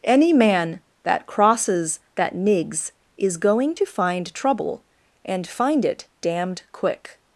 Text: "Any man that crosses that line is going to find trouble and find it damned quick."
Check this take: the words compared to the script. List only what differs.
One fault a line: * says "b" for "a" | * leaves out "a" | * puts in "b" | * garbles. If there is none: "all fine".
* says "nigs" for "line"